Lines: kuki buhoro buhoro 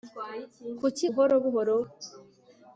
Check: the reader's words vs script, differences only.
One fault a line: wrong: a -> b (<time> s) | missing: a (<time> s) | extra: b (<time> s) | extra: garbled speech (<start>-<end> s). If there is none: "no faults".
no faults